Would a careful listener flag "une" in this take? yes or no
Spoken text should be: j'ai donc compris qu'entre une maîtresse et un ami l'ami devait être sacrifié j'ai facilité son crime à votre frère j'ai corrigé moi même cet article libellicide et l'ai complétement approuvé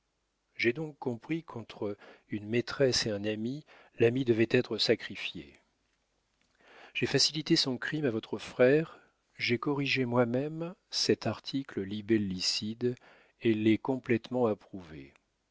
no